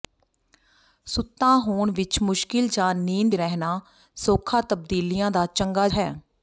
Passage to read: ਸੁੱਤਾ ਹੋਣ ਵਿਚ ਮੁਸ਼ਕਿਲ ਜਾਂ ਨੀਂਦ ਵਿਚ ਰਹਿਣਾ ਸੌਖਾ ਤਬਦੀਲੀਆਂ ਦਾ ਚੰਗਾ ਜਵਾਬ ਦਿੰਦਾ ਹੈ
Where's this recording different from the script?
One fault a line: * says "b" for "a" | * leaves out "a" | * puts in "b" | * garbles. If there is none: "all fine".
* leaves out "ਵਿਚ"
* leaves out "ਜਵਾਬ ਦਿੰਦਾ"